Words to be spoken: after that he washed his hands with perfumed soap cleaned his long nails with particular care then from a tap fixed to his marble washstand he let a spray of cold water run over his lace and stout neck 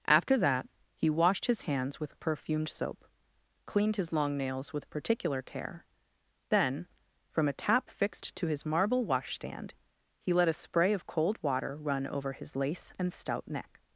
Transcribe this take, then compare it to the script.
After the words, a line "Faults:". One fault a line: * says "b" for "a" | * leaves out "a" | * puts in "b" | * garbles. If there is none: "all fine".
after that he washed his hands with perfumed soap cleaned his long nails with particular care then from a tap fixed to his marble washstand he let a spray of cold water run over his lace and stout neck
Faults:
all fine